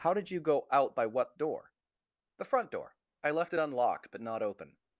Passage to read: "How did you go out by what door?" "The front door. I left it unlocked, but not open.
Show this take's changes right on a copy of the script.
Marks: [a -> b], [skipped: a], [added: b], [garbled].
"How did you go out by what door?" "The front door. I left it unlocked, but not open.